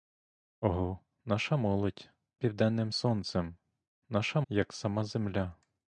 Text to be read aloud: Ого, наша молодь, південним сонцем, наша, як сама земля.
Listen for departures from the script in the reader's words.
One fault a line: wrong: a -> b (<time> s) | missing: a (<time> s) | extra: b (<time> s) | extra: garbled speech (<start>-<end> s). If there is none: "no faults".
no faults